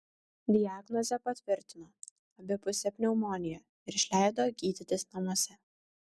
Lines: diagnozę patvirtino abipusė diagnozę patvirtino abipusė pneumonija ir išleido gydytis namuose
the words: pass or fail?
fail